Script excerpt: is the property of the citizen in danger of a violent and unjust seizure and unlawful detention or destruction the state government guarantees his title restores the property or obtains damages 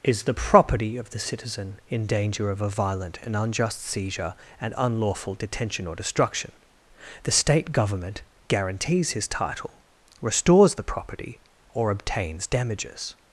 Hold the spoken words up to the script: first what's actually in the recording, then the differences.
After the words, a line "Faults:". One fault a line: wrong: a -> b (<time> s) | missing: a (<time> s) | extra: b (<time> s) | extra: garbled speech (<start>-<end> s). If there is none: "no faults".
is the property of the citizen in danger of a violent and unjust seizure and unlawful detention or destruction the state government guarantees his title restores the property or obtains damages
Faults:
no faults